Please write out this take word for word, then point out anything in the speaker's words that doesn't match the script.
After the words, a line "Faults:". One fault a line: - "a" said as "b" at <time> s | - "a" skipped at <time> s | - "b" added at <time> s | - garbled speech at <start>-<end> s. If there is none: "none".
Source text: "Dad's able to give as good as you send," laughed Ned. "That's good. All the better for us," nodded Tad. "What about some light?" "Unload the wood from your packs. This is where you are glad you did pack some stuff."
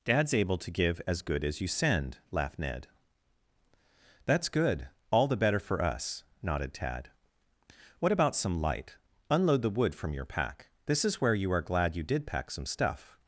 "Dad's able to give as good as you send," laughed Ned. "That's good. All the better for us," nodded Tad. "What about some light?" "Unload the wood from your pack. This is where you are glad you did pack some stuff."
Faults:
- "packs" said as "pack" at 10.2 s